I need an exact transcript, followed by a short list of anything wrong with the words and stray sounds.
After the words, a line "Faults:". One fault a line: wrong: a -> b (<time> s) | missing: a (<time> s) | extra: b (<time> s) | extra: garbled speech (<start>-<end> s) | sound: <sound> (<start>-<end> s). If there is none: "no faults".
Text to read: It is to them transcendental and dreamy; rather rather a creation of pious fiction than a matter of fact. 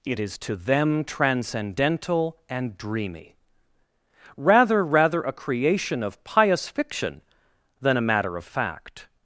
It is to them transcendental and dreamy; rather rather a creation of pious fiction than a matter of fact.
Faults:
no faults